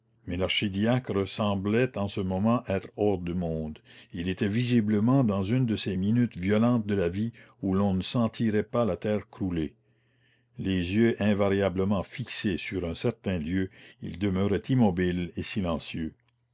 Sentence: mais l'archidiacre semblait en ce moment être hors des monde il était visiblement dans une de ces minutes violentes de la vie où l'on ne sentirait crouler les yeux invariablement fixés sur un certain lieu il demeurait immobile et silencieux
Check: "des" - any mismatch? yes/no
yes